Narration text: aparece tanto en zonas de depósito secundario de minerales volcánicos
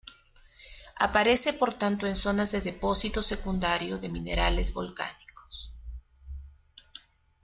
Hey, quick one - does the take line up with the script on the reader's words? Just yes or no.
no